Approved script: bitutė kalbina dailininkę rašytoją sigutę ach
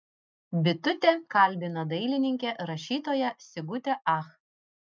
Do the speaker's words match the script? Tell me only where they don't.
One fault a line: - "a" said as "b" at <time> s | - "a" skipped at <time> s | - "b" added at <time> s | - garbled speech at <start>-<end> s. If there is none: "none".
none